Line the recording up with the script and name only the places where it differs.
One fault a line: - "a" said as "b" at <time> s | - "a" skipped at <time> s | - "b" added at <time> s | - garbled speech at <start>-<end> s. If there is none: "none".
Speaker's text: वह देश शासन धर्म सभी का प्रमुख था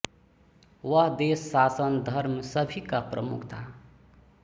none